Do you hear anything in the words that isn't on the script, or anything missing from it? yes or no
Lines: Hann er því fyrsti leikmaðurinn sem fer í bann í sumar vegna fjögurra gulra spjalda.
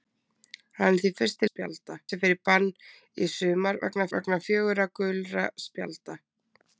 yes